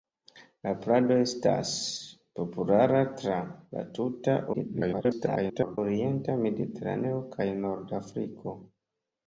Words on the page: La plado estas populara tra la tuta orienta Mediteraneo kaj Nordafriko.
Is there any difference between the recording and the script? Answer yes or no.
yes